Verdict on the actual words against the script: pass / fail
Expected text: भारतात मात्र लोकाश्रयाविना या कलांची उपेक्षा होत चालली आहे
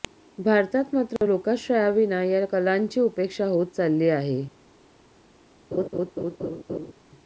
pass